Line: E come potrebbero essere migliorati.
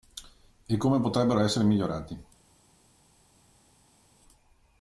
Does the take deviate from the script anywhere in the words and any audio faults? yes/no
no